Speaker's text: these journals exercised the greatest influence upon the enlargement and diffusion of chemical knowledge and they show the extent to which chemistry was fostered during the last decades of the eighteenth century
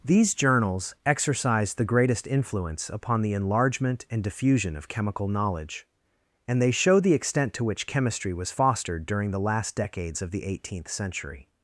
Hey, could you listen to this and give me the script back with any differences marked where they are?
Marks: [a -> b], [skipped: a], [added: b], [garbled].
these journals exercised the greatest influence upon the enlargement and diffusion of chemical knowledge and they show the extent to which chemistry was fostered during the last decades of the eighteenth century